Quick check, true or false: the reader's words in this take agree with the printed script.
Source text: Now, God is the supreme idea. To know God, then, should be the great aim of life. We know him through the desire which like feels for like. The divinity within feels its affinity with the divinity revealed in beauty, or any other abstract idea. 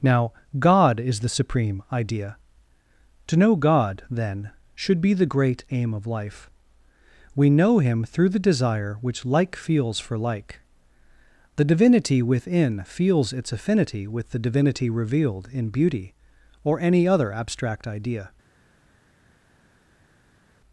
true